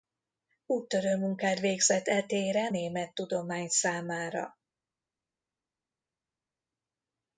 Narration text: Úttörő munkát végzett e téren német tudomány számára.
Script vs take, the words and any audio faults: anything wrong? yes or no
no